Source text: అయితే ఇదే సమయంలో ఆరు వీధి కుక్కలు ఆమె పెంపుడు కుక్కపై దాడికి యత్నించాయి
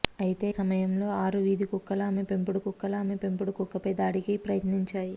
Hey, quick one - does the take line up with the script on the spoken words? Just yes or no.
no